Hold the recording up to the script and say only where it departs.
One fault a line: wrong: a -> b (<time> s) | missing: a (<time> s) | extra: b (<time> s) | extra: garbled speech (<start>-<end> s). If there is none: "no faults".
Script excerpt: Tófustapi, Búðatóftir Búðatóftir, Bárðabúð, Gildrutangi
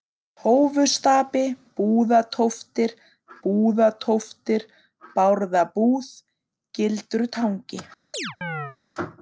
no faults